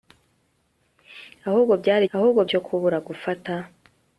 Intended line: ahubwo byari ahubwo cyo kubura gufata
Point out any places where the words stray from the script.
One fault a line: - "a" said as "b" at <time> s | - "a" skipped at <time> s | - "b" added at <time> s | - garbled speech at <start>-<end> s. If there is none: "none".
none